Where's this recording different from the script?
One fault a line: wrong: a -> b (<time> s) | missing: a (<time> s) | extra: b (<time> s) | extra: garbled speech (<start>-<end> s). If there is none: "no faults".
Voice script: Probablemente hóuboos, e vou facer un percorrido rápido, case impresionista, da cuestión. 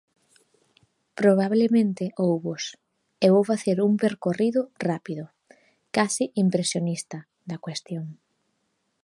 no faults